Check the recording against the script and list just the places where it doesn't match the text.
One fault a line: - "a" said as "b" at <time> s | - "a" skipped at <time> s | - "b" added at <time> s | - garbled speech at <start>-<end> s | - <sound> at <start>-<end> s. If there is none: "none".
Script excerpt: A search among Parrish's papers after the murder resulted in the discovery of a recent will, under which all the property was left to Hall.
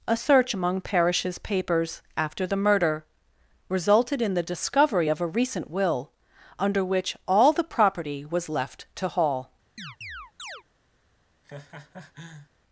- chirp at 9.8-10.6 s
- laugh at 11.4-12.5 s